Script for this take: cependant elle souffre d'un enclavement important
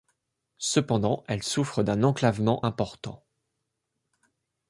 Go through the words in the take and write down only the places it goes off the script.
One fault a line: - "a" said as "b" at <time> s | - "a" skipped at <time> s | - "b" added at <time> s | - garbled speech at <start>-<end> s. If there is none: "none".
none